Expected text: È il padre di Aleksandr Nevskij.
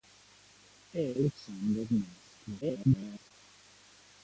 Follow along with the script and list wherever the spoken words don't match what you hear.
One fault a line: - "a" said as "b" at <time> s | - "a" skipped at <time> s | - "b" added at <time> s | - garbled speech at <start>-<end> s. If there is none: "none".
- "il padre di" skipped at 1.1 s
- garbled speech at 2.6-3.3 s